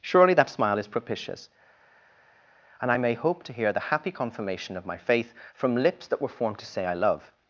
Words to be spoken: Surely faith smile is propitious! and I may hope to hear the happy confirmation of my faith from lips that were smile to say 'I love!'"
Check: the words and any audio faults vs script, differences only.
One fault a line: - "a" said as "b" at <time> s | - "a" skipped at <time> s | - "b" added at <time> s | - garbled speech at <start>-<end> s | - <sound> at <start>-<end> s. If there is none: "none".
- "faith" said as "that" at 0.3 s
- "smile" said as "formed" at 6.3 s